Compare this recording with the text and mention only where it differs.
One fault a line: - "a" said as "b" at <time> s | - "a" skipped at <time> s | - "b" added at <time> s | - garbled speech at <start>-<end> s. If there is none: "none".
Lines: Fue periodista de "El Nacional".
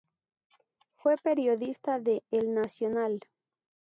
none